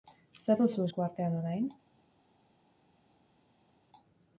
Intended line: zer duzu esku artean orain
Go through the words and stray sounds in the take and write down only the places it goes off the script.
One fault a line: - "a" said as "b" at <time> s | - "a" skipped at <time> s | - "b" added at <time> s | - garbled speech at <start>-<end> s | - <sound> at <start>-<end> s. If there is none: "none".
none